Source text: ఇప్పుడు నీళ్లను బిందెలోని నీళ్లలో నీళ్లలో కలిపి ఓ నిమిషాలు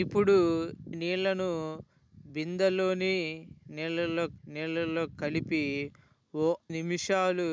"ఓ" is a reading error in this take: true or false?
false